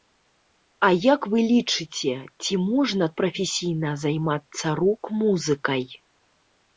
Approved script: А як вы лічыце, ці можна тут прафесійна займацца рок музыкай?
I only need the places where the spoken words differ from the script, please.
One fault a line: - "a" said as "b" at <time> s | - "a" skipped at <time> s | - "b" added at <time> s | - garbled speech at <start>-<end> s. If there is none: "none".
- "тут" skipped at 3.0 s